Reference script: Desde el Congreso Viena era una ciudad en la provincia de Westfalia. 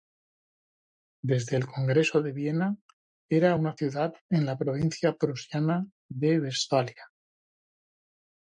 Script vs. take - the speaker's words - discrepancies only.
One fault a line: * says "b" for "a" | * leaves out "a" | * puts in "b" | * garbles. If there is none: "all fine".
* puts in "de"
* puts in "prusiana"